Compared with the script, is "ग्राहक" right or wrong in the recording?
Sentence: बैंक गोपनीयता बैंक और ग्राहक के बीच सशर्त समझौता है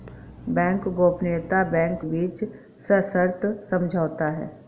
wrong